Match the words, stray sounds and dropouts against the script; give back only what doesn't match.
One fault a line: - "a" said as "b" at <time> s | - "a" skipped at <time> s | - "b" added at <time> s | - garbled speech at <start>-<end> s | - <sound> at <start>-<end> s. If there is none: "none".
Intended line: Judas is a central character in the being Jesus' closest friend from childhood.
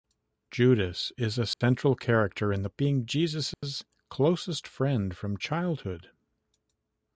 - dropout at 1.5-1.6 s
- dropout at 3.5-3.6 s